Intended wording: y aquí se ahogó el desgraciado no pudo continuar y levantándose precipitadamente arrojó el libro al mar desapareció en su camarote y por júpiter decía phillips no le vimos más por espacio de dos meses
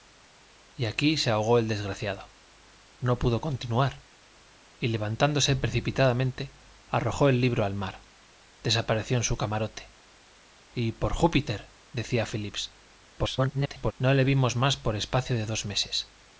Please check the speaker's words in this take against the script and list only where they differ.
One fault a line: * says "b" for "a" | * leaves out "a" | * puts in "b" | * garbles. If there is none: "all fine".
* garbles